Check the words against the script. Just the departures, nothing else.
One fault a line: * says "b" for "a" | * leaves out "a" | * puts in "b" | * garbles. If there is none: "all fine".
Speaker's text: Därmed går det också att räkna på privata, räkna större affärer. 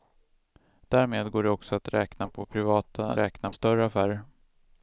all fine